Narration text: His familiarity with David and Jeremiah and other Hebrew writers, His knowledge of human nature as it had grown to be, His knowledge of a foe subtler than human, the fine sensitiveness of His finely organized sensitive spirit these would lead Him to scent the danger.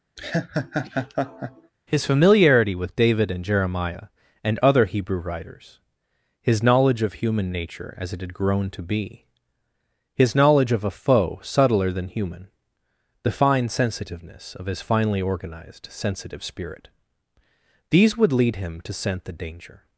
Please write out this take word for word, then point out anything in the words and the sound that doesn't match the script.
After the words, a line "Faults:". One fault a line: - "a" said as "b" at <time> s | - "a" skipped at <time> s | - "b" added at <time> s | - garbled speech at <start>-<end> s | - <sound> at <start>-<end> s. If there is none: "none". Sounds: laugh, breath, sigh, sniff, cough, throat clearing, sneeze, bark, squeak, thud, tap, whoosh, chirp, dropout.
His familiarity with David and Jeremiah and other Hebrew writers, His knowledge of human nature as it had grown to be, His knowledge of a foe subtler than human, the fine sensitiveness of His finely organized sensitive spirit these would lead Him to scent the danger.
Faults:
- laugh at 0.2-1.7 s